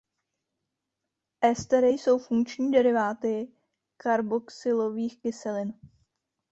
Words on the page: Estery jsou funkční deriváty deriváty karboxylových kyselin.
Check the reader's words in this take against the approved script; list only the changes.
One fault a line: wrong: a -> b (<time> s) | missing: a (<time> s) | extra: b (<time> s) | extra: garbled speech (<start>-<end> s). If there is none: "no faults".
missing: deriváty (3.5 s)